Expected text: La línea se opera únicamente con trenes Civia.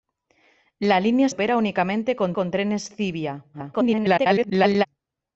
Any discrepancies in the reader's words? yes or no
yes